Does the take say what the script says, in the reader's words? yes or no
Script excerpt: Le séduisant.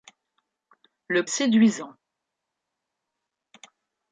yes